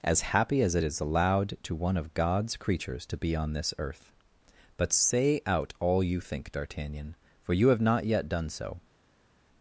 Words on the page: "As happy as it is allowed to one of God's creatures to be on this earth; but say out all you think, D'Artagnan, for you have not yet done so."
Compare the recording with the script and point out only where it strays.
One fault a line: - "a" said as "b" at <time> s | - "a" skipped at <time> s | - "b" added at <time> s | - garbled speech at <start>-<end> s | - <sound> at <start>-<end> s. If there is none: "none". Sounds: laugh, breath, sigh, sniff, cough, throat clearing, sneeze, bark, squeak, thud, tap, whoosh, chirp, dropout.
none